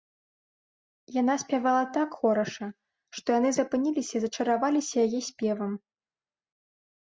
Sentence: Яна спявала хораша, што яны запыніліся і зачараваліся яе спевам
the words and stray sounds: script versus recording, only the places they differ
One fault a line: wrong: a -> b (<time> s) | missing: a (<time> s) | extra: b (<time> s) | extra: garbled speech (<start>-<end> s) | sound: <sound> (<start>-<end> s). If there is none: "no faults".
extra: так (2.0 s)